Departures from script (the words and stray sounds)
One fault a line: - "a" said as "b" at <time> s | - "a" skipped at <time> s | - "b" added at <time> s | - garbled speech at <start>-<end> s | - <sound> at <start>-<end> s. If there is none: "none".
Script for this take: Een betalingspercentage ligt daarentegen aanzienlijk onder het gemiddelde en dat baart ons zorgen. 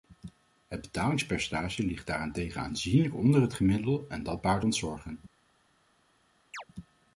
- "Een" said as "Het" at 0.7 s
- chirp at 6.5-6.6 s